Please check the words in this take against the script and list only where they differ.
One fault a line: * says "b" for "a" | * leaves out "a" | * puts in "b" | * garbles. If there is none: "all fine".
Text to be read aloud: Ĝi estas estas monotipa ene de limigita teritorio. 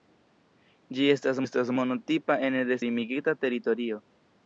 all fine